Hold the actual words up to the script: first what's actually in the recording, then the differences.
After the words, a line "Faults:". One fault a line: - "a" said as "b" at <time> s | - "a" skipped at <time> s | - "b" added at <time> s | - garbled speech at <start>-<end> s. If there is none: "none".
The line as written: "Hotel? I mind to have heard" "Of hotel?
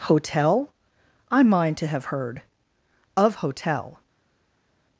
"Hotel? I mind to have heard" "Of hotel?
Faults:
none